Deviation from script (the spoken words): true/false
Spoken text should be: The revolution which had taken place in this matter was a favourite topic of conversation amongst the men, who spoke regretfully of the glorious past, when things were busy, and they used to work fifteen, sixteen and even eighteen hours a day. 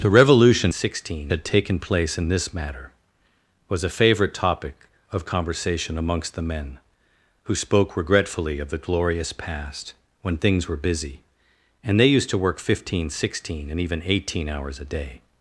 true